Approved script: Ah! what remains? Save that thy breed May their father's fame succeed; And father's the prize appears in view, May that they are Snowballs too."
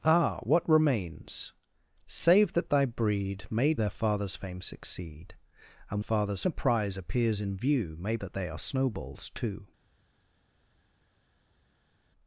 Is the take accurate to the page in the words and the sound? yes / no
yes